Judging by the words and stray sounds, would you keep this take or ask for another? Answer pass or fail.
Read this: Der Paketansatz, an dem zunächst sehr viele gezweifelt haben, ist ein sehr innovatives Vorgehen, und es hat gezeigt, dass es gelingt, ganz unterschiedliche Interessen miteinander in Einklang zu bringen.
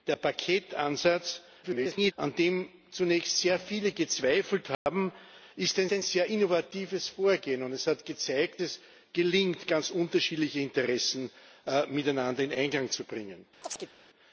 fail